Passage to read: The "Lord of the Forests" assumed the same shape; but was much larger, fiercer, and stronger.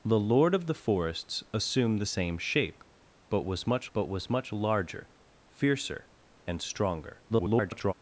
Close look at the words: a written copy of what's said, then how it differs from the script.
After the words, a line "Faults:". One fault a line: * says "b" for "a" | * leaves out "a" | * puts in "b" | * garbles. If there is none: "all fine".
The "Lord of the Forests" assumed the same shape; but was much but was much larger, fiercer, and stronger. [garbled]
Faults:
* puts in "but was much"
* garbles